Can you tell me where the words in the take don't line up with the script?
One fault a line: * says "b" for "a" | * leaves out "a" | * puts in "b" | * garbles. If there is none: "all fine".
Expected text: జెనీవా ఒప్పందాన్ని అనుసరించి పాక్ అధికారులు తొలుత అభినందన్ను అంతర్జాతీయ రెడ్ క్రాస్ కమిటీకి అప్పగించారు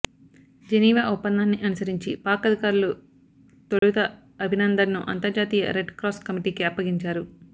all fine